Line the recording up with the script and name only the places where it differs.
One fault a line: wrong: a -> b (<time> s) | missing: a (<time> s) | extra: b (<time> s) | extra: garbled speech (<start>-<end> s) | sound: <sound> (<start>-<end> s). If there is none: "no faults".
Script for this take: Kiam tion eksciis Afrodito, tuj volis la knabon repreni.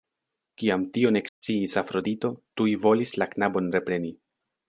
sound: dropout (1.3-1.4 s)